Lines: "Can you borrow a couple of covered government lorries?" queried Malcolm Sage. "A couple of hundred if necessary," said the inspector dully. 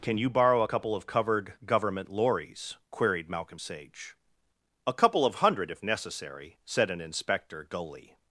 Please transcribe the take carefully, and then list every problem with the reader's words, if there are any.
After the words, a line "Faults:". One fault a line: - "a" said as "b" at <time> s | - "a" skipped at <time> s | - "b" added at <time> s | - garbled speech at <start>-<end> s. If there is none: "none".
"Can you borrow a couple of covered government lorries?" queried Malcolm Sage. "A couple of hundred if necessary," said an inspector dully.
Faults:
- "the" said as "an" at 6.9 s